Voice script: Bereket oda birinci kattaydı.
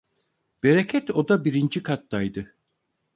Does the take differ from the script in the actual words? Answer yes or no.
no